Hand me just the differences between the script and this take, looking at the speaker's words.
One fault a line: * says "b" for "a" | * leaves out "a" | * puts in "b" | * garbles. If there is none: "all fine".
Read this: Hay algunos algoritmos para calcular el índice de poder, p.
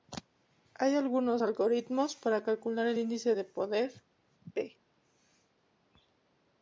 all fine